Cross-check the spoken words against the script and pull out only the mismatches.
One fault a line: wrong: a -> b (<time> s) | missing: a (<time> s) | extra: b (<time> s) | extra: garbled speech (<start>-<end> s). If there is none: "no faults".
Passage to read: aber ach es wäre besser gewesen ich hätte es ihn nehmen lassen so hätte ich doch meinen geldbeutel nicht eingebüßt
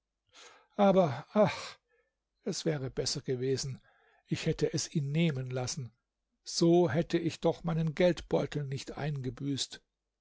no faults